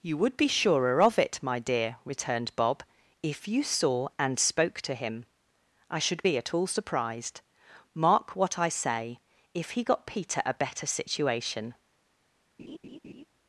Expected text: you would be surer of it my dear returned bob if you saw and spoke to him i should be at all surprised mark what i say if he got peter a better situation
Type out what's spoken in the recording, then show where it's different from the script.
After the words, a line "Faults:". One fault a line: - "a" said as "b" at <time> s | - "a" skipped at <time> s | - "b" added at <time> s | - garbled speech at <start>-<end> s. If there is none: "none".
you would be surer of it my dear returned bob if you saw and spoke to him i should be at all surprised mark what i say if he got peter a better situation
Faults:
none